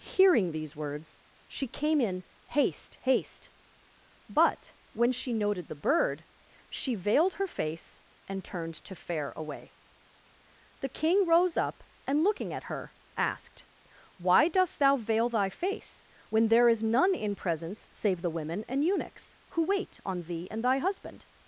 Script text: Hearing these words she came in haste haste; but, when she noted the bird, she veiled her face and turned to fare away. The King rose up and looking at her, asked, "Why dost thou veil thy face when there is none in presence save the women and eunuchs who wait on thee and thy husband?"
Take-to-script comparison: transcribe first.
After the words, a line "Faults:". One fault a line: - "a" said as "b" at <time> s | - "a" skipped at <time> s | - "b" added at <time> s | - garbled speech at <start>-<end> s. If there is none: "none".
Hearing these words she came in haste haste; but, when she noted the bird, she veiled her face and turned to fare away. The King rose up and looking at her, asked, "Why dost thou veil thy face when there is none in presence save the women and eunuchs who wait on thee and thy husband?"
Faults:
none